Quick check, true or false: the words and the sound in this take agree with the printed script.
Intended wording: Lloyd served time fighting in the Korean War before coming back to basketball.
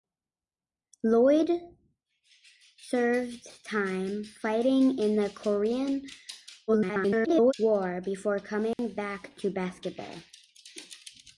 false